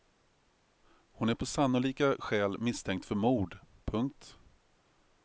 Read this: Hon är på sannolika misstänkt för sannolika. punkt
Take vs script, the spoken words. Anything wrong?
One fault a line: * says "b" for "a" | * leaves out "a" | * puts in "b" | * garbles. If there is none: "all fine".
* puts in "skäl"
* says "mord" for "sannolika"